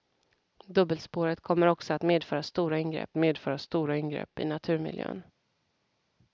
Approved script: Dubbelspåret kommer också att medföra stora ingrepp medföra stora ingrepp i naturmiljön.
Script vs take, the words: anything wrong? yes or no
no